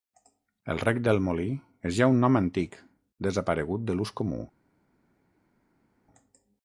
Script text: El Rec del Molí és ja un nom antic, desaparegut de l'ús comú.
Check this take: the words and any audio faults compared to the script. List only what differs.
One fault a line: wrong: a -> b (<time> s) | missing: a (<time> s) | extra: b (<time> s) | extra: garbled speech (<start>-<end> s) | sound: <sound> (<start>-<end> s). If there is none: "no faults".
no faults